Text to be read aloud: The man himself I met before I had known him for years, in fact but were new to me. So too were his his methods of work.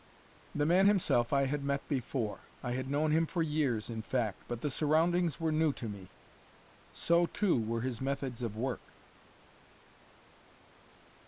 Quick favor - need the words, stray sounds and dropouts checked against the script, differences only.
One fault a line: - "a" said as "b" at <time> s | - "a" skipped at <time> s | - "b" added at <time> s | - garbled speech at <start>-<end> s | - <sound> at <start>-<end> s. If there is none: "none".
- "had" added at 1.5 s
- "the surroundings" added at 4.6 s
- "his" skipped at 8.0 s